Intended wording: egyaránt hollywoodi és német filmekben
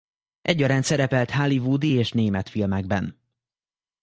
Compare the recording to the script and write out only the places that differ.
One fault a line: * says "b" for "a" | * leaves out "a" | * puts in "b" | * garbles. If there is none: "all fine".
* puts in "szerepelt"